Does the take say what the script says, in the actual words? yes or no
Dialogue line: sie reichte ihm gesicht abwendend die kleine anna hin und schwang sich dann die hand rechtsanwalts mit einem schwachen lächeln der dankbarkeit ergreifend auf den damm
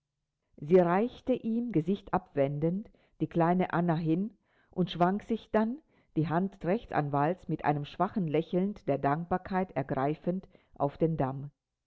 yes